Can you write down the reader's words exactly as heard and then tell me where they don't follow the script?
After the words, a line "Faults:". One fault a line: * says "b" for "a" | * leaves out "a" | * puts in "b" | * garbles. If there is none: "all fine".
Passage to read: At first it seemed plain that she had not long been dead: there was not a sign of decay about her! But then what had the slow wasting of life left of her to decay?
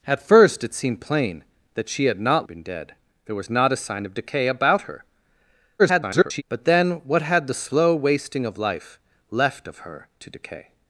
At first it seemed plain that she had not been dead: there was not a sign of decay about her! [garbled] But then what had the slow wasting of life left of her to decay?
Faults:
* leaves out "long"
* garbles